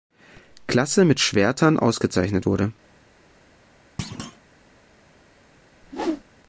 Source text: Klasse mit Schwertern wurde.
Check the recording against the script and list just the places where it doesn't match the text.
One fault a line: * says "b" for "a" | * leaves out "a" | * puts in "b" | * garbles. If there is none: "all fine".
* puts in "ausgezeichnet"